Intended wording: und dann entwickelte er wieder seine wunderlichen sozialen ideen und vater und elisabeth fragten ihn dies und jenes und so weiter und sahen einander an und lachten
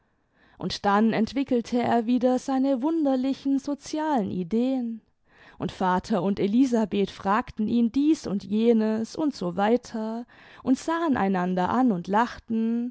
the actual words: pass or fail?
pass